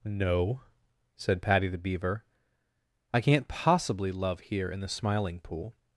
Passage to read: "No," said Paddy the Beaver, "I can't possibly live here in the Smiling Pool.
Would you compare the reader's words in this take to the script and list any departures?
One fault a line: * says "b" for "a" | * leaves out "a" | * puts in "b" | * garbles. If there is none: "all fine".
* says "love" for "live"